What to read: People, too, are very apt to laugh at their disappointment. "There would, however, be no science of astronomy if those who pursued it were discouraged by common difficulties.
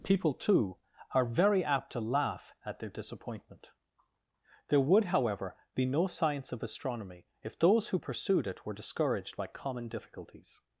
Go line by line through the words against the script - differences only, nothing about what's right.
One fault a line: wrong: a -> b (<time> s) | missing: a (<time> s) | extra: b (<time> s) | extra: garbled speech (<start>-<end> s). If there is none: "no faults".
no faults